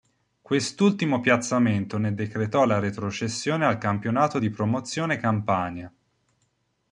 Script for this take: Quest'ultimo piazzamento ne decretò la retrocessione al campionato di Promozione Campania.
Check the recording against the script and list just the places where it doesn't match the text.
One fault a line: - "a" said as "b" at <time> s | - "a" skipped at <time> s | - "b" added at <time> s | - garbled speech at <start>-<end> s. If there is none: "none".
none